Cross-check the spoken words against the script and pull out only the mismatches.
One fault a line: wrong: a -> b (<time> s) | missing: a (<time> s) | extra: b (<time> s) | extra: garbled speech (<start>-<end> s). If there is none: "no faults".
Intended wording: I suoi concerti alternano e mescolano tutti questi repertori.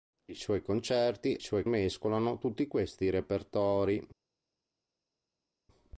wrong: alternano -> suoi (1.4 s)